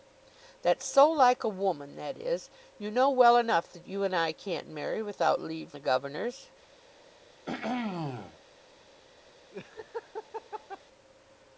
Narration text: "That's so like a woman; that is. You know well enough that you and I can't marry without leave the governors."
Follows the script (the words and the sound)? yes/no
no